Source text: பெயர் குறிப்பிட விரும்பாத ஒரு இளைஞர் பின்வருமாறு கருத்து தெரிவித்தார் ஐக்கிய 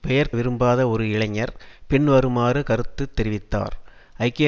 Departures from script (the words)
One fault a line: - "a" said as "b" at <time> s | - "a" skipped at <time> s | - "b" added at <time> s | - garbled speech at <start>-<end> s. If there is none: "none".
- "குறிப்பிட" skipped at 0.3 s